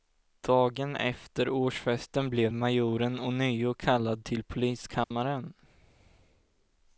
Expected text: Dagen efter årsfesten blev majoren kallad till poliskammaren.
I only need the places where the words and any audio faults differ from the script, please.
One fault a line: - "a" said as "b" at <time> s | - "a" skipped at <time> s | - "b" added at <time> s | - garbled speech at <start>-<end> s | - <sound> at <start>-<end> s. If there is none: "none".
- "ånyo" added at 3.2 s
- dropout at 5.0-5.1 s